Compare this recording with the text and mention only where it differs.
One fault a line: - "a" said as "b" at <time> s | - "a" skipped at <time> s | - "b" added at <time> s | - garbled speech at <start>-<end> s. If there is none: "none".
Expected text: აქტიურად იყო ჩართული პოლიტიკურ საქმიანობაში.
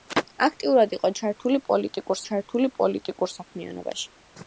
- "ჩართული პოლიტიკურ" added at 2.3 s